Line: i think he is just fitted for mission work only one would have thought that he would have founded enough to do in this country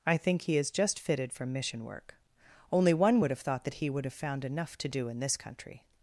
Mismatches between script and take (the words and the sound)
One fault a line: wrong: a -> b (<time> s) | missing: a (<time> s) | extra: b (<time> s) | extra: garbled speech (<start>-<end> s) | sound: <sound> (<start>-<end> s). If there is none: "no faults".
wrong: founded -> found (4.1 s)